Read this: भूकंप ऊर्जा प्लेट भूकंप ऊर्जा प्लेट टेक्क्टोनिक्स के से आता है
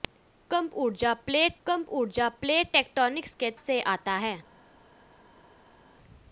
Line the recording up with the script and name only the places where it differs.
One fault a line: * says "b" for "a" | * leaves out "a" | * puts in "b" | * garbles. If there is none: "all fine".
all fine